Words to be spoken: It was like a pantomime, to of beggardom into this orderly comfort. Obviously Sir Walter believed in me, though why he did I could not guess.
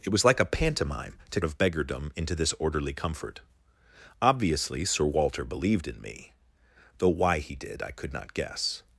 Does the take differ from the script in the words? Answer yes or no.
no